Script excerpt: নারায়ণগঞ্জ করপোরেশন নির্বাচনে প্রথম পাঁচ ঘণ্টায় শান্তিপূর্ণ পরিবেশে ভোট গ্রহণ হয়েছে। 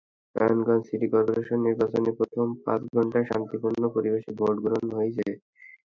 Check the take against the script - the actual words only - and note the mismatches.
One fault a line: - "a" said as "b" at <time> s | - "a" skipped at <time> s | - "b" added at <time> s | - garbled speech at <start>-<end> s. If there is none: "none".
- "সিটি" added at 0.9 s